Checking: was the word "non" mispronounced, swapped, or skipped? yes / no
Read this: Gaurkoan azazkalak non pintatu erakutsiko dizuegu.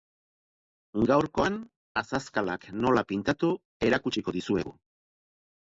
yes